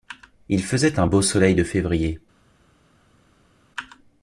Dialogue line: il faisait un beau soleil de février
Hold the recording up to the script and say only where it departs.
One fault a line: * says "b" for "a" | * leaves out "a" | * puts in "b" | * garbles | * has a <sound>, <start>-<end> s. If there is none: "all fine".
all fine